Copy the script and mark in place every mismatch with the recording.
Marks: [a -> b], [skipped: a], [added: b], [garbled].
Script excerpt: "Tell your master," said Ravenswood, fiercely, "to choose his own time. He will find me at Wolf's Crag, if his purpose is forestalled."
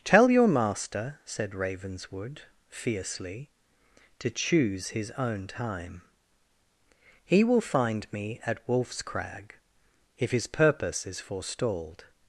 "Tell your master," said Ravenswood, fiercely, "to choose his own time. He will find me at Wolf's Crag, if his purpose is forestalled."